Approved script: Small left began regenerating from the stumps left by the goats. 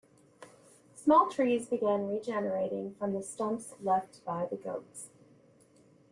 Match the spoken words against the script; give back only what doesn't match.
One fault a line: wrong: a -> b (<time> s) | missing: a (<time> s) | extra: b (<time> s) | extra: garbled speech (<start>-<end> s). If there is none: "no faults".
wrong: left -> trees (1.3 s)